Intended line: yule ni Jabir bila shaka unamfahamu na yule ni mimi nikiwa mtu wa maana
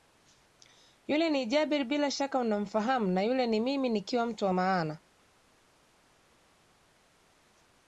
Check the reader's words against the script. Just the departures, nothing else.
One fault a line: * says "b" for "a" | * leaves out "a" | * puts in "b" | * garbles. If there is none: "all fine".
all fine